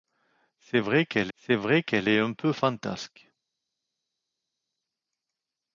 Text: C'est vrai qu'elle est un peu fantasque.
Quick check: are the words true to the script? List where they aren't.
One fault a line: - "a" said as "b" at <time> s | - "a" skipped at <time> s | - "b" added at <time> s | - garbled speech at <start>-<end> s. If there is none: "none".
- "c'est vrai qu'elle" added at 1.3 s